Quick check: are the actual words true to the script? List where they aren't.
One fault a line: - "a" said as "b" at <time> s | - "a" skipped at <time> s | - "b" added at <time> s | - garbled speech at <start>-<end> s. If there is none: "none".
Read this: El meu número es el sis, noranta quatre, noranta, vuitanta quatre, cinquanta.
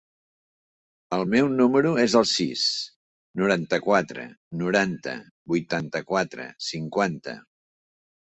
none